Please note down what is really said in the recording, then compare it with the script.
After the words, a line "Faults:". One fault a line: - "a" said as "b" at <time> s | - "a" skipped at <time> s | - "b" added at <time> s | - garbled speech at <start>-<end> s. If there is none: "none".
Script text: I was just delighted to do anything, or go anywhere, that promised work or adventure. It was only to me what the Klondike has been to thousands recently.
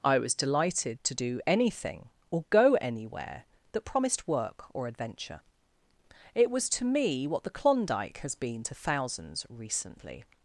I was delighted to do anything, or go anywhere, that promised work or adventure. It was to me what the Klondike has been to thousands recently.
Faults:
- "just" skipped at 0.3 s
- "only" skipped at 6.7 s